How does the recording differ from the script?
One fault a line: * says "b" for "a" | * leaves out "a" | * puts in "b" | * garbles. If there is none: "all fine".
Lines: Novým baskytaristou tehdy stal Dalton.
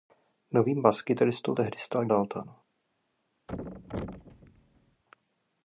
all fine